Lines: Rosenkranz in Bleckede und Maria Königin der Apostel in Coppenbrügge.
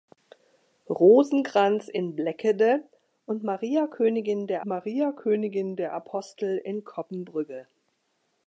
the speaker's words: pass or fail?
fail